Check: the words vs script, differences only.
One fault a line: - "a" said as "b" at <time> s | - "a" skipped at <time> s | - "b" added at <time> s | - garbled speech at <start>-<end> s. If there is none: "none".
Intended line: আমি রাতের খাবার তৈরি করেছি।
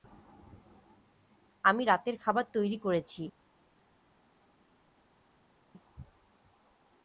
none